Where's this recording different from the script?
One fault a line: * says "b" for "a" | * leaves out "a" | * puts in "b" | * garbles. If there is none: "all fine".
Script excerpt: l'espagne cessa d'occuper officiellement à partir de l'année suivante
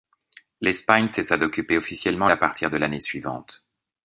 all fine